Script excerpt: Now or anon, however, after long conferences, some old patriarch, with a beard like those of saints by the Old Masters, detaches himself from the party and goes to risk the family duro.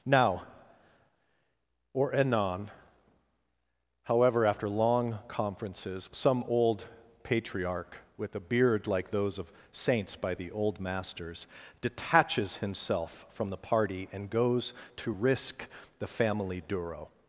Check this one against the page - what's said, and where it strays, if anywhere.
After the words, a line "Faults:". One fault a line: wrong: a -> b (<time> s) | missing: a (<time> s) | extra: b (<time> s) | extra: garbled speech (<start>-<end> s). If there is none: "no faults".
Now or anon, however, after long conferences, some old patriarch, with a beard like those of saints by the Old Masters, detaches himself from the party and goes to risk the family duro.
Faults:
no faults